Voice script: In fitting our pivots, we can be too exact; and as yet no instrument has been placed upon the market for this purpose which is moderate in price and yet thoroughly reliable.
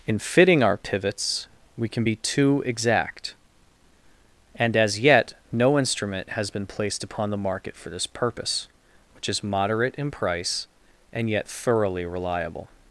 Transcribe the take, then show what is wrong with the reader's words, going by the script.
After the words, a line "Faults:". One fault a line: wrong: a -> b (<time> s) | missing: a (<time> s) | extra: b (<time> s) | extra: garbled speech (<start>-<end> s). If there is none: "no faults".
In fitting our pivots, we can be too exact; and as yet no instrument has been placed upon the market for this purpose which is moderate in price and yet thoroughly reliable.
Faults:
no faults